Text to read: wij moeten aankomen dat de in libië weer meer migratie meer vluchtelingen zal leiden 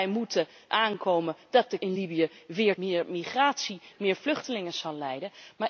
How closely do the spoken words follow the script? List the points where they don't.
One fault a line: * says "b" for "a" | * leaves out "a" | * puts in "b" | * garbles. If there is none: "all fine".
all fine